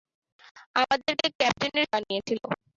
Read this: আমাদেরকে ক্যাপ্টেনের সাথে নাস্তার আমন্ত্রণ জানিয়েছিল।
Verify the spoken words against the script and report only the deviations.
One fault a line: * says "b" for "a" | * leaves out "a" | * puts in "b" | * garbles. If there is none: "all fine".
* leaves out "সাথে নাস্তার আমন্ত্রণ"